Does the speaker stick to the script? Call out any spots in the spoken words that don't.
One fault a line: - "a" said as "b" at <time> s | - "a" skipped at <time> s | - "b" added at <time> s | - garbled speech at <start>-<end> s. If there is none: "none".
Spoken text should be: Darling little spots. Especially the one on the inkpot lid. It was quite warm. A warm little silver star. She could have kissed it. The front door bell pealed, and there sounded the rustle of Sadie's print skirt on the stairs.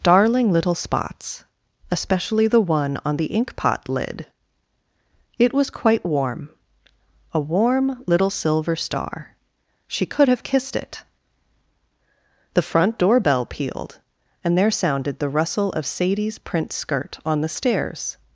none